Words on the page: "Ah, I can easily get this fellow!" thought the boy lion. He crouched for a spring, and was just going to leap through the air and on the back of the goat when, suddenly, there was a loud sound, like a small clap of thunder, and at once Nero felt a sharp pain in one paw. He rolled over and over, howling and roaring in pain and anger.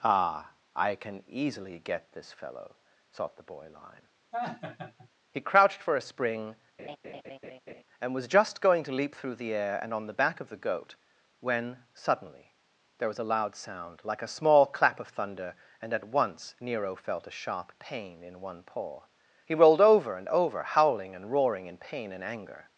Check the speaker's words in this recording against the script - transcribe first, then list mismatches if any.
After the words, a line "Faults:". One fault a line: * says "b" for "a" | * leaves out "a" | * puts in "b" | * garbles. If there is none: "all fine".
"Ah, I can easily get this fellow!" thought the boy lion. He crouched for a spring, and was just going to leap through the air and on the back of the goat when, suddenly, there was a loud sound, like a small clap of thunder, and at once Nero felt a sharp pain in one paw. He rolled over and over, howling and roaring in pain and anger.
Faults:
all fine